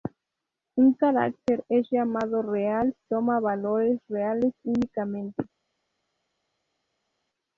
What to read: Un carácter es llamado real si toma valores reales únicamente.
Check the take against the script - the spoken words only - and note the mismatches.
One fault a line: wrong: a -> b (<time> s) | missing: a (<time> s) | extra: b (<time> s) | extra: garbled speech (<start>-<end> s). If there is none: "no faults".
missing: si (3.0 s)